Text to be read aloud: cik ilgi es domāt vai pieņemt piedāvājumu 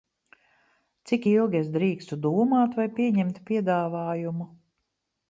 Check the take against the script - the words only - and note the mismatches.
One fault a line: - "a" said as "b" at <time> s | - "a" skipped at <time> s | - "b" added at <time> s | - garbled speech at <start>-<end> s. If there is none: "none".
- "drīkstu" added at 1.8 s